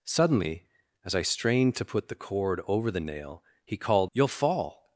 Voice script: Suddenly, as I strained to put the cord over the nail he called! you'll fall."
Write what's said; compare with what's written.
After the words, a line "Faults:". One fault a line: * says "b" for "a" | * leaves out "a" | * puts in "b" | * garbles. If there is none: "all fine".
Suddenly, as I strained to put the cord over the nail he called! you'll fall."
Faults:
all fine